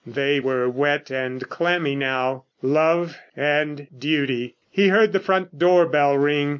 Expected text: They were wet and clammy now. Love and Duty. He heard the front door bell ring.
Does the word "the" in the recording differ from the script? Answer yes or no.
no